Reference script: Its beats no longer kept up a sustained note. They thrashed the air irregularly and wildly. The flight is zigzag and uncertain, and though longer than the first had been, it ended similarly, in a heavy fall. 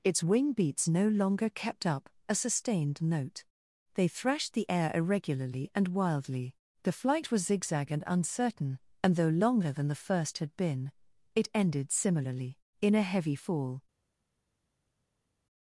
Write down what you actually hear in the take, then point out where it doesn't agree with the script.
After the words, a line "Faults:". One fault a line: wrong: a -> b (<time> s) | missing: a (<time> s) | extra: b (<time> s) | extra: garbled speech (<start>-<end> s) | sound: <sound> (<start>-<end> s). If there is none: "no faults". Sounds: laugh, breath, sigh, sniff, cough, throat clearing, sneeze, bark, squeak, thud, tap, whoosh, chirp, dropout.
Its wing beats no longer kept up a sustained note. They thrashed the air irregularly and wildly. The flight was zigzag and uncertain, and though longer than the first had been, it ended similarly, in a heavy fall.
Faults:
extra: wing (0.2 s)
wrong: is -> was (7.3 s)